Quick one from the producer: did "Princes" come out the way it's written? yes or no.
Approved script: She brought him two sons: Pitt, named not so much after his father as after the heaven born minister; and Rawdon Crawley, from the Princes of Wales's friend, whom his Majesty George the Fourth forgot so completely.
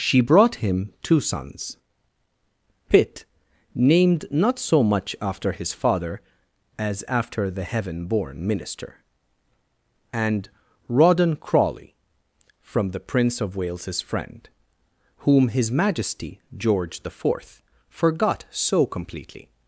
no